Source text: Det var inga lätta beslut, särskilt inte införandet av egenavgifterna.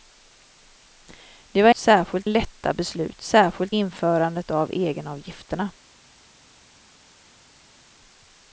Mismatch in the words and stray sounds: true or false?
true